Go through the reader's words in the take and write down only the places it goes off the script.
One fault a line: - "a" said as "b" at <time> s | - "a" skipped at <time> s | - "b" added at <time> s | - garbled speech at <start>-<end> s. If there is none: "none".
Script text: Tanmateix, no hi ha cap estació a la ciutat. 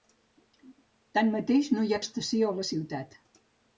- "cap" skipped at 2.0 s